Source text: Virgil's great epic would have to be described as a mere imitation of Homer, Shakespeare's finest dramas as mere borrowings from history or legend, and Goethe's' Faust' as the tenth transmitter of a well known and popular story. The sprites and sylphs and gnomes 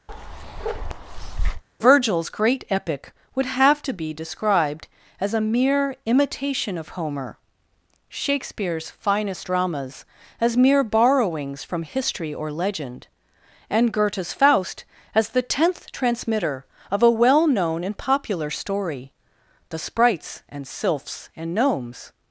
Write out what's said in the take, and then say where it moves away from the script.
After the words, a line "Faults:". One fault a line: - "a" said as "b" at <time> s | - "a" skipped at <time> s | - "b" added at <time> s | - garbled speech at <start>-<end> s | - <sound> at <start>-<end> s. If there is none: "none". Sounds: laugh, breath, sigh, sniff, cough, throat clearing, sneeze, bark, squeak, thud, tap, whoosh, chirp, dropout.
Virgil's great epic would have to be described as a mere imitation of Homer, Shakespeare's finest dramas as mere borrowings from history or legend, and Goethe's' Faust' as the tenth transmitter of a well known and popular story. The sprites and sylphs and gnomes
Faults:
- bark at 0.1-1.6 s